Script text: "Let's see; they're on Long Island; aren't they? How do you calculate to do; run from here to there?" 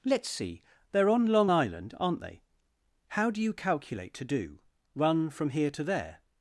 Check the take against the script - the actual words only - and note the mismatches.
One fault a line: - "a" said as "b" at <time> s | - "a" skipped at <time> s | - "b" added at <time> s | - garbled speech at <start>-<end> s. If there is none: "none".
none